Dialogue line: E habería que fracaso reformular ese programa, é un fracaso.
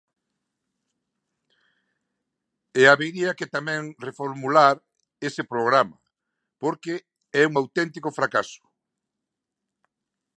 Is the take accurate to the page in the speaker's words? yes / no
no